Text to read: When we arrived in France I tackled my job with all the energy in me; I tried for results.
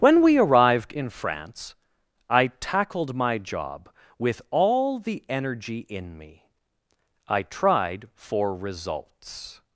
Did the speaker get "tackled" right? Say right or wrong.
right